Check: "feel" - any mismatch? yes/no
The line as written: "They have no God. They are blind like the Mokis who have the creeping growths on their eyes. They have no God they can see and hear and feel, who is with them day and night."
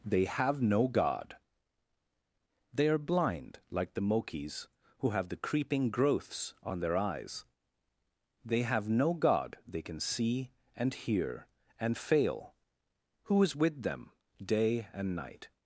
yes